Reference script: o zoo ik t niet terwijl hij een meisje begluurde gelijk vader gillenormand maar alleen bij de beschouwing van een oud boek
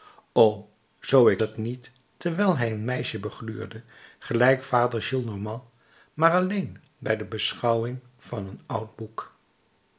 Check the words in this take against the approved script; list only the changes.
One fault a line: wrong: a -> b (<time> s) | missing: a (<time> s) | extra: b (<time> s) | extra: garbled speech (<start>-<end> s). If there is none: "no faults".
no faults